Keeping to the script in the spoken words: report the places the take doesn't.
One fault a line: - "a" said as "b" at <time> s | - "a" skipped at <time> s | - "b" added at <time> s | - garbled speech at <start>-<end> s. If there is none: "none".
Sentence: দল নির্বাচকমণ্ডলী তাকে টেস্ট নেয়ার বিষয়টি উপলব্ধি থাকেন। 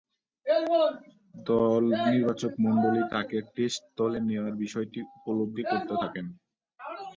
- "দলে" added at 4.0 s
- "করতে" added at 5.7 s